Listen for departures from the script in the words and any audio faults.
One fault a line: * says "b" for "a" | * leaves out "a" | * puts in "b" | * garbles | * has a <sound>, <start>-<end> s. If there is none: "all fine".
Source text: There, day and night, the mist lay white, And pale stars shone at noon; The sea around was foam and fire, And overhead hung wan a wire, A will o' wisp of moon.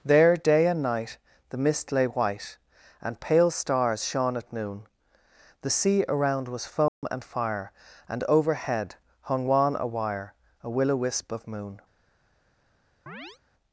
* has a dropout, 6.9-7.0 s
* has a chirp, 13.1-13.4 s